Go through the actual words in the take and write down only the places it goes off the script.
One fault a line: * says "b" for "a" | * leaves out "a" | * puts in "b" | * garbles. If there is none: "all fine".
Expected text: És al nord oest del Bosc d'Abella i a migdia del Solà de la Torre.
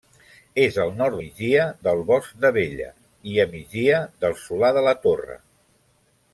* says "migdia" for "oest"